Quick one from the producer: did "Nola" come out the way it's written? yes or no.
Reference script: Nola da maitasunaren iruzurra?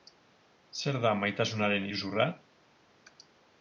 no